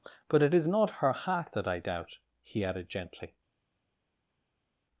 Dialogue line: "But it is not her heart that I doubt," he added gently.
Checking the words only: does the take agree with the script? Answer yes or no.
yes